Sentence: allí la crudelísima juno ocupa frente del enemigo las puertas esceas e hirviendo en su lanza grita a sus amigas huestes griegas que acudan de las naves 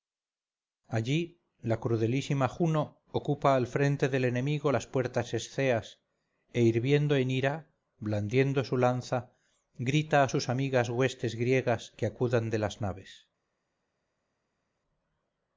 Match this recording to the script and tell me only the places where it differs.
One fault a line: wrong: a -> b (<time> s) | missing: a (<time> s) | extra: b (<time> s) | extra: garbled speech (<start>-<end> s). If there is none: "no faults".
extra: al (3.5 s)
extra: ira blandiendo (7.3 s)